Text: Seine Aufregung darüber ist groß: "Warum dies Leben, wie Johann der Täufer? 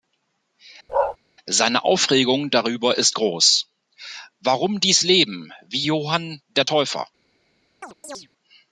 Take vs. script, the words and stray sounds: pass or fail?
fail